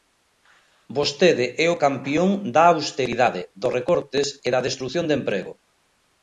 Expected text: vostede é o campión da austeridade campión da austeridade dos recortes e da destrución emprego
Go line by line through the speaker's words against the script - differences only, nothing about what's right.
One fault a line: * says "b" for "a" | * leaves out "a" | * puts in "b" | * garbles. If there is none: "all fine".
* leaves out "campión da austeridade"
* puts in "de"